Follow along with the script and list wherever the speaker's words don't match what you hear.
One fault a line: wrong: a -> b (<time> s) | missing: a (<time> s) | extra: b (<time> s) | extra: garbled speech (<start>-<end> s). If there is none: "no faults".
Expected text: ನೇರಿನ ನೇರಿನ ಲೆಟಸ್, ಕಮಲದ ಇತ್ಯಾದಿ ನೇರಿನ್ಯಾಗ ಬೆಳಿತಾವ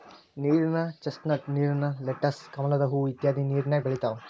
extra: ಚಸ್ನಟ್ (1.0 s)
extra: ಹೂ (2.9 s)